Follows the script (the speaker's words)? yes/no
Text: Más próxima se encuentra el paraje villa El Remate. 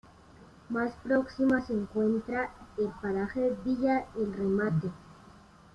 yes